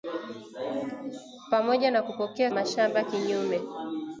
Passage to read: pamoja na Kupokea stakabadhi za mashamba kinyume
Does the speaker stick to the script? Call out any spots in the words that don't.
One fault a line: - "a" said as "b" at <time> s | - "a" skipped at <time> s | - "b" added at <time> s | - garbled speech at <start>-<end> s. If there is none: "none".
- "stakabadhi za" skipped at 2.5 s